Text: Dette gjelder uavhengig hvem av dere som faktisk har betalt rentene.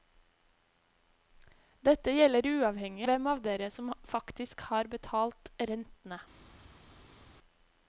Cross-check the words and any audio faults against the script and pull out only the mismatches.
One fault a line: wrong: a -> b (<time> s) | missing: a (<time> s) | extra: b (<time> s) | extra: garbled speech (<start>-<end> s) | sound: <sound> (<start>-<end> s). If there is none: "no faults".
no faults